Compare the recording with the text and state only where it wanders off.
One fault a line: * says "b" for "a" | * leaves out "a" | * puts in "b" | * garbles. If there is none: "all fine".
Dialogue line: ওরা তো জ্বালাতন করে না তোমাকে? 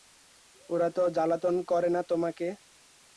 all fine